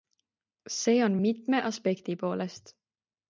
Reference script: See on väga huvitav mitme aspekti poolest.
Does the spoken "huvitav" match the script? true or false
false